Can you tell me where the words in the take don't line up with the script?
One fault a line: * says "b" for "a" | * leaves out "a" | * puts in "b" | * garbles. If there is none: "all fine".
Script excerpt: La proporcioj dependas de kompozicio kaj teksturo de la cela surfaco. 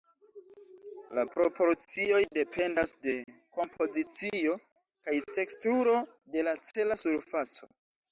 all fine